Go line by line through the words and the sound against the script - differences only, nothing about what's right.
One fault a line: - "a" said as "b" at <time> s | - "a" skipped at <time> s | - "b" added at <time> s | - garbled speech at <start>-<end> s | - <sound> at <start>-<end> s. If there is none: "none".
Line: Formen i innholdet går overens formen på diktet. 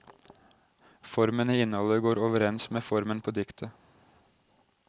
- "med" added at 2.7 s